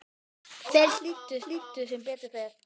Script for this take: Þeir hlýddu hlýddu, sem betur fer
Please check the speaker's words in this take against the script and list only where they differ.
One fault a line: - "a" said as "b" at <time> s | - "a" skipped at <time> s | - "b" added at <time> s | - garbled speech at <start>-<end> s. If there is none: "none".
none